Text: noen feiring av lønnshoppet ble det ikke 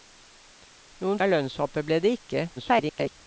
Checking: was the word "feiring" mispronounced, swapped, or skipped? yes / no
yes